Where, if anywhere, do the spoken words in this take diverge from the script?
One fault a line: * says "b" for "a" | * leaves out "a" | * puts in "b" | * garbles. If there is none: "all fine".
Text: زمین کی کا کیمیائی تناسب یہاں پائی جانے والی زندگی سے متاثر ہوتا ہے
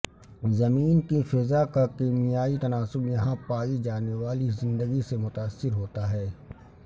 * puts in "فضا"